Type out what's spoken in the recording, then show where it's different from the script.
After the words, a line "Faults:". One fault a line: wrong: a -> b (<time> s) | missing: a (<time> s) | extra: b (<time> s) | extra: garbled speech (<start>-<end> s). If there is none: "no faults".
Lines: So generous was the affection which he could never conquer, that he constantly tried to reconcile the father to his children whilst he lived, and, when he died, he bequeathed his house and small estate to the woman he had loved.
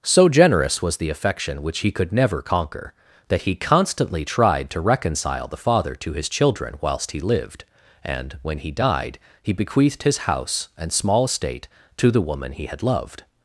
So generous was the affection which he could never conquer, that he constantly tried to reconcile the father to his children whilst he lived, and, when he died, he bequeathed his house and small estate to the woman he had loved.
Faults:
no faults